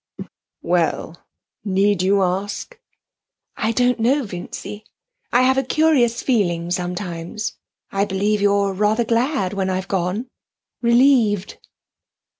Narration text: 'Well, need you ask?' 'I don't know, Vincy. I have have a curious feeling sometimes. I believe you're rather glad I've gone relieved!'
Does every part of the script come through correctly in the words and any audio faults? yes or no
no